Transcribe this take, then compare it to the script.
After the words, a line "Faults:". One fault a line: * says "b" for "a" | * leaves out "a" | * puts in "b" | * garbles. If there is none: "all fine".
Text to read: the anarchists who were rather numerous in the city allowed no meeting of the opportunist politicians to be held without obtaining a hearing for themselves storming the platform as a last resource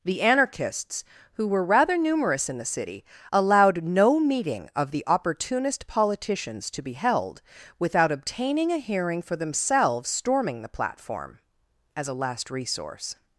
the anarchists who were rather numerous in the city allowed no meeting of the opportunist politicians to be held without obtaining a hearing for themselves storming the platform as a last resource
Faults:
all fine